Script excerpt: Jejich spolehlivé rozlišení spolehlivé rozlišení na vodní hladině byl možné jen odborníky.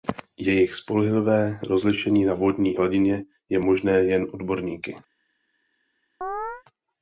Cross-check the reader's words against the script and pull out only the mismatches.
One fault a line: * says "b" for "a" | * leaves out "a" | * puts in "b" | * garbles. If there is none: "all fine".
* leaves out "spolehlivé rozlišení"
* says "je" for "byl"